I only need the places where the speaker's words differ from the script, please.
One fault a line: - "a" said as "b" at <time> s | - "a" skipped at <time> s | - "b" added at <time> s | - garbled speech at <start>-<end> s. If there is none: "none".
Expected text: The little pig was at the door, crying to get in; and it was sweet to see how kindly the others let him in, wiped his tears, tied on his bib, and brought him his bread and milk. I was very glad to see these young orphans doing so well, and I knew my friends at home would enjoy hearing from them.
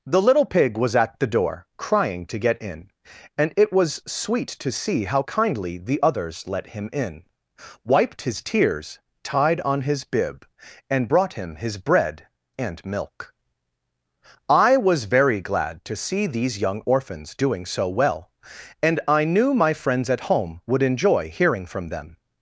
none